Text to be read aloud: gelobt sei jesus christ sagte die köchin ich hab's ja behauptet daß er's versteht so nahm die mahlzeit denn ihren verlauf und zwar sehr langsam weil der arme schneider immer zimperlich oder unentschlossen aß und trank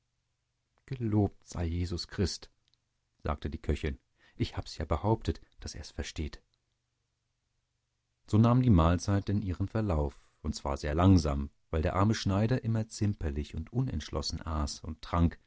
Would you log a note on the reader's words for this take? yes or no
yes